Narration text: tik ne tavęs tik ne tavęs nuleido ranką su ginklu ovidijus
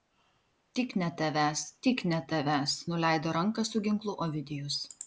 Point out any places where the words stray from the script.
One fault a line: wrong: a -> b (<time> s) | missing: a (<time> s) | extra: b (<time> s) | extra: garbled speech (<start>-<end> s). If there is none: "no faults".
no faults